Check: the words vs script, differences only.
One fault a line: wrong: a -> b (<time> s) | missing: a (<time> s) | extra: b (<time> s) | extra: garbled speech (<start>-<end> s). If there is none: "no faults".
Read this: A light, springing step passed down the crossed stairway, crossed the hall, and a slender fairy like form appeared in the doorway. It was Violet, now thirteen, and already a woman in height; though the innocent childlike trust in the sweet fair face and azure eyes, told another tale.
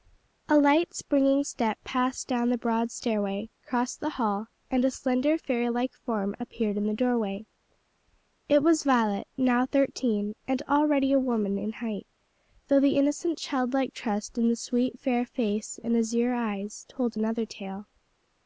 wrong: crossed -> broad (2.6 s)